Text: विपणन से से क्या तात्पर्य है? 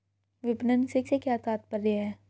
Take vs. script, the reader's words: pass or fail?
pass